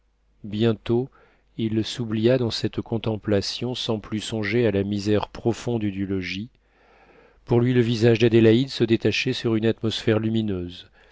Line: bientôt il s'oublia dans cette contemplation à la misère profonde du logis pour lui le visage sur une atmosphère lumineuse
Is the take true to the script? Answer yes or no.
no